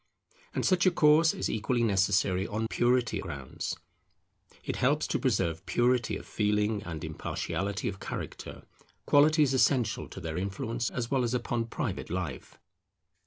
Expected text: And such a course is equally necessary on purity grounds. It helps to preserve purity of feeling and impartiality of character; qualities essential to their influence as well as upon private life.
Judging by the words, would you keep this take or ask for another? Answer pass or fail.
pass